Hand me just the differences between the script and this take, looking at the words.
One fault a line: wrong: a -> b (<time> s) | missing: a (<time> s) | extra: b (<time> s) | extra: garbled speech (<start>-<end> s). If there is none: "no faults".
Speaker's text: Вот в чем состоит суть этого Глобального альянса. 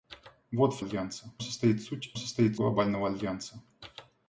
wrong: чем -> альянса (0.8 s)
wrong: этого -> состоит (2.1 s)